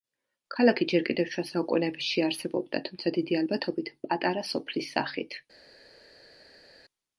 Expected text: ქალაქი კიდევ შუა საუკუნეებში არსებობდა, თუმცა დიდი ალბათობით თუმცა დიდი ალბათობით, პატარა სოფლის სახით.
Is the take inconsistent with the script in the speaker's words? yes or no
yes